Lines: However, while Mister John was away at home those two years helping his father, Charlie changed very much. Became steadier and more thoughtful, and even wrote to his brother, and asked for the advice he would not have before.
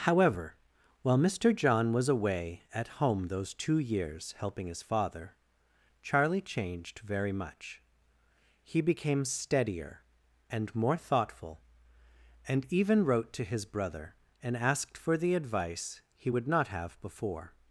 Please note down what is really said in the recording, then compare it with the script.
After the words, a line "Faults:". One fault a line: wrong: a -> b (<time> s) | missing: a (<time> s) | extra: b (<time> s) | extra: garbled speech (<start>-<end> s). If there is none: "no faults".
However, while Mister John was away at home those two years helping his father, Charlie changed very much. He became steadier and more thoughtful, and even wrote to his brother, and asked for the advice he would not have before.
Faults:
extra: He (8.6 s)